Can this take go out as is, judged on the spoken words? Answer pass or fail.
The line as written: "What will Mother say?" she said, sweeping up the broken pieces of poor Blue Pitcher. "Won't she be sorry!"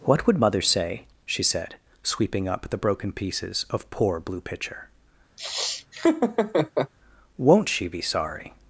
fail